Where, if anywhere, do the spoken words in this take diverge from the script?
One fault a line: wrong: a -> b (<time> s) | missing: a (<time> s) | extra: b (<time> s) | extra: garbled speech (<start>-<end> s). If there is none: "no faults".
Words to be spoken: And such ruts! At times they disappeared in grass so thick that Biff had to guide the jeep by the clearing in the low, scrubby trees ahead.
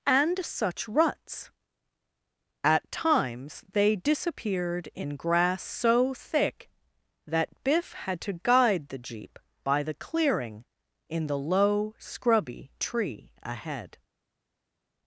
wrong: trees -> tree (12.8 s)